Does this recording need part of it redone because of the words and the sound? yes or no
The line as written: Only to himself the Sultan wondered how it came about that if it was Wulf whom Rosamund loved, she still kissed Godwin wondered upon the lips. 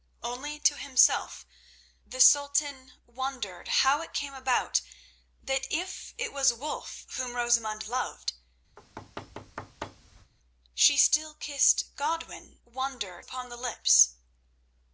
yes